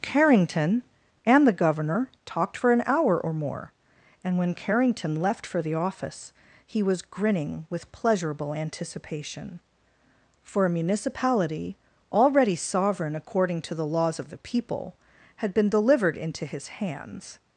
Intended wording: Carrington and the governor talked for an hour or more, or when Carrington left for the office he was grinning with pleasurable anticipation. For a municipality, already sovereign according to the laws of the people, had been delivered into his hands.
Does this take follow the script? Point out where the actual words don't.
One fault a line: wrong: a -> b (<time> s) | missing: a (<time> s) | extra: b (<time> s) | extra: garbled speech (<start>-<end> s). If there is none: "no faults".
wrong: or -> and (4.2 s)